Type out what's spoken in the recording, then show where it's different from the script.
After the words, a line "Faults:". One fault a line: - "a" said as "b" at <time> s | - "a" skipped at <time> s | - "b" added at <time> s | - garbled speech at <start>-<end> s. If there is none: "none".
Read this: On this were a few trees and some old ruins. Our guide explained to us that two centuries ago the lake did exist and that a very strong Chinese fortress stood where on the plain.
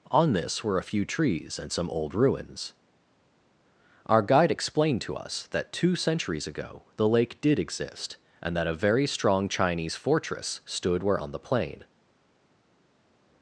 On this were a few trees and some old ruins. Our guide explained to us that two centuries ago the lake did exist and that a very strong Chinese fortress stood where on the plain.
Faults:
none